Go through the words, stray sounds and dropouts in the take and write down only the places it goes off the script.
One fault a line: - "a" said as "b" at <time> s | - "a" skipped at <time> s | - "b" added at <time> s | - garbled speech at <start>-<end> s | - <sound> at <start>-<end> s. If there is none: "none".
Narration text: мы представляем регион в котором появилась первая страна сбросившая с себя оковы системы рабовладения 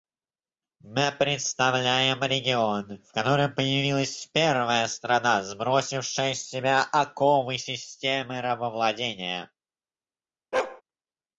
- bark at 10.5-10.8 s